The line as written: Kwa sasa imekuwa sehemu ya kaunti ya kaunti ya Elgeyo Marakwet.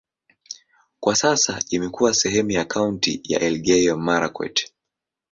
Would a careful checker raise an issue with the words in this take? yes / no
yes